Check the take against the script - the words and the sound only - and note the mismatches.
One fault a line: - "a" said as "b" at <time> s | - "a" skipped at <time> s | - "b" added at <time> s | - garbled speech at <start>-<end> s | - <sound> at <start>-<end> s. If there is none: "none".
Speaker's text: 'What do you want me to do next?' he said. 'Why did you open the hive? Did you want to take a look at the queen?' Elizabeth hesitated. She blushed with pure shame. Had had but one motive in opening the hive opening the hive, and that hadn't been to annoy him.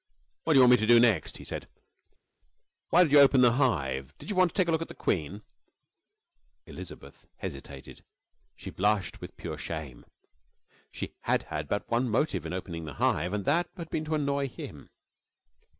- "She" added at 10.9 s
- "opening the hive" skipped at 13.3 s
- "hadn't" said as "had" at 13.8 s